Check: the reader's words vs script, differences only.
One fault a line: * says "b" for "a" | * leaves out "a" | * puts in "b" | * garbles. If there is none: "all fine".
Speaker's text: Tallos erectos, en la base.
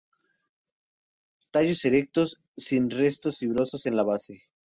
* puts in "sin restos fibrosos"